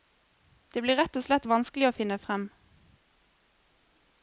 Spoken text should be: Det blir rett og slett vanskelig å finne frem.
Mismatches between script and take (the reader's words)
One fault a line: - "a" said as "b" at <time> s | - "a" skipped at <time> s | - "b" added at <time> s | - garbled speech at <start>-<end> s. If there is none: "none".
none